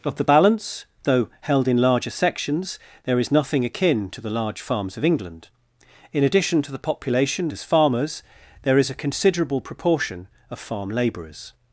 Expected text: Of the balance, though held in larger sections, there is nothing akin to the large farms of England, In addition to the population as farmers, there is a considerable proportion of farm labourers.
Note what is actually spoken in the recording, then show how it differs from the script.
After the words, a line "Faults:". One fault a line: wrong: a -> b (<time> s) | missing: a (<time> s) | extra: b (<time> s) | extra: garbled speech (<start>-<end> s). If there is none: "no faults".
Of the balance, though held in larger sections, there is nothing akin to the large farms of England, In addition to the population as farmers, there is a considerable proportion of farm labourers.
Faults:
no faults